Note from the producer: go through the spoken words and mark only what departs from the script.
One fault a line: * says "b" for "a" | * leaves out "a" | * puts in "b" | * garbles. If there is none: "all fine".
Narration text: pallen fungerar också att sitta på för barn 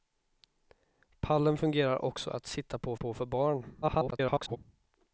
* puts in "på"
* garbles